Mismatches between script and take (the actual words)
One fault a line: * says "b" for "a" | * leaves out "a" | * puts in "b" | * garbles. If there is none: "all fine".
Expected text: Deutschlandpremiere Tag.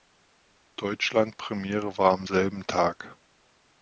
* puts in "war am selben"